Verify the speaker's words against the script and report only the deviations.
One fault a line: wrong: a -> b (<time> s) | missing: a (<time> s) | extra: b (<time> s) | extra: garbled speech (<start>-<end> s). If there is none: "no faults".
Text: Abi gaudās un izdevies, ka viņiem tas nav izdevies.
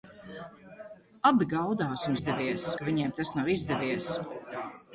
no faults